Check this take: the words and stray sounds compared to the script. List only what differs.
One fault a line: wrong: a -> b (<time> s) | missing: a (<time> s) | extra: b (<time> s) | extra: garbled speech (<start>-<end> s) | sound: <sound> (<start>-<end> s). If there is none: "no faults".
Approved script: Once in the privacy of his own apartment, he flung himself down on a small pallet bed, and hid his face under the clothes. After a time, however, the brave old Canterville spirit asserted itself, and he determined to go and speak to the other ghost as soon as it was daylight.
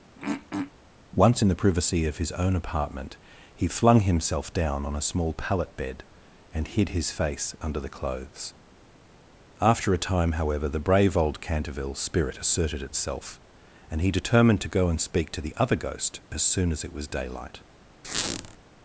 sound: throat clearing (0.2-0.7 s)
sound: squeak (18.0-18.6 s)